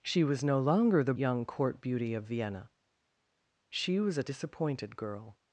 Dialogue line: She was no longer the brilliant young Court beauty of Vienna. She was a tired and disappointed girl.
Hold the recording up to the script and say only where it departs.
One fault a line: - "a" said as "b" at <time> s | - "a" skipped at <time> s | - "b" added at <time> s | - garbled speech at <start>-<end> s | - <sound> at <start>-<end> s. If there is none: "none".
- "brilliant" skipped at 1.1 s
- "tired and" skipped at 4.2 s